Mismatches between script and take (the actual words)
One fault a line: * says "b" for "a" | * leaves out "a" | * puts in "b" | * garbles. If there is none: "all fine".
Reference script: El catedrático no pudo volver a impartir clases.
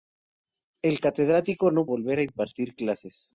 * leaves out "pudo"